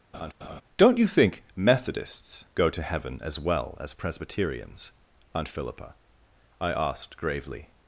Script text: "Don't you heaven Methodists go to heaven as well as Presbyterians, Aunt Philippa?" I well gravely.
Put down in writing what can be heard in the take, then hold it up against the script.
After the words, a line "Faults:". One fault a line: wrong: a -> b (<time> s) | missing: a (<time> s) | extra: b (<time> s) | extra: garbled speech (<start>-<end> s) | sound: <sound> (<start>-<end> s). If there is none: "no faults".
"Don't you think Methodists go to heaven as well as Presbyterians, Aunt Philippa?" I asked gravely.
Faults:
sound: laugh (0.1-0.6 s)
wrong: heaven -> think (1.1 s)
wrong: well -> asked (6.7 s)